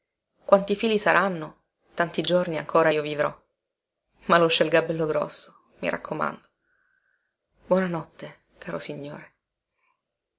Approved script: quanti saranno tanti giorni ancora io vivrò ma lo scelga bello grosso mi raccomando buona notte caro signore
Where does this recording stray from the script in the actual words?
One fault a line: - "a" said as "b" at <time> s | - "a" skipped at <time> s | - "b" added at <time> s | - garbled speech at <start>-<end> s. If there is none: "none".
- "fili" added at 0.8 s